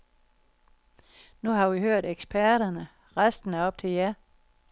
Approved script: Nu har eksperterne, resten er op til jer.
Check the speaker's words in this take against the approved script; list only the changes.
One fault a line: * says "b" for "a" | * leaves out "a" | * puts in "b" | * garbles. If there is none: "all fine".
* puts in "vi hørt"